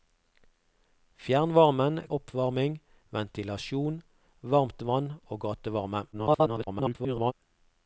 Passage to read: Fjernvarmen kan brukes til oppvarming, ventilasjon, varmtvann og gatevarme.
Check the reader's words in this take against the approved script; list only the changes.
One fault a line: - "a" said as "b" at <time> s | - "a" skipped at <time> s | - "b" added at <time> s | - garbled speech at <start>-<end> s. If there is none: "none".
- "kan brukes til" skipped at 2.0 s
- garbled speech at 6.1-7.3 s